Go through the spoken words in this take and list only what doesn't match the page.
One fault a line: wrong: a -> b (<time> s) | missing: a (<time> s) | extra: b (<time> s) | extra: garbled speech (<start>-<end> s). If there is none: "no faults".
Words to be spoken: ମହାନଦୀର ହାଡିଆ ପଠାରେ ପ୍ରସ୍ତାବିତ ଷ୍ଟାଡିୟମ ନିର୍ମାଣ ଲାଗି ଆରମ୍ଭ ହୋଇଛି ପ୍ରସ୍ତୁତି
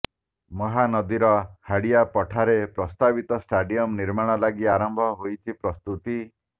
no faults